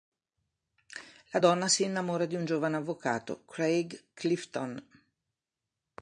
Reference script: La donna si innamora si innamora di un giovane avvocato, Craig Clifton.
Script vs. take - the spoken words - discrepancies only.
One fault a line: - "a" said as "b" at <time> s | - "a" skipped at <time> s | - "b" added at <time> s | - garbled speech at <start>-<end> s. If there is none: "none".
- "si innamora" skipped at 2.2 s